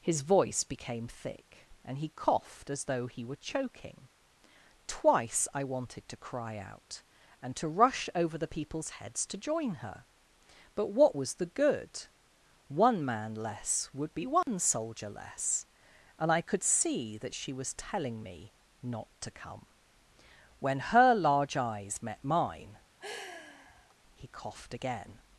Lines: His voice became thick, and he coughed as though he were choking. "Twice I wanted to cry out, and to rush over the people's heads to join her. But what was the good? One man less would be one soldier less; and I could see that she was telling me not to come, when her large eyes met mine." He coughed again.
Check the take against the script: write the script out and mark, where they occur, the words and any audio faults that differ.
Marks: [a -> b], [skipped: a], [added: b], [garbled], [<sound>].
His voice became thick, and he coughed as though he were choking. "Twice I wanted to cry out, and to rush over the people's heads to join her. But what was the good? One man less would be one [dropout] soldier less; and I could see that she was telling me not to come, when her large eyes met mine." [sigh] He coughed again.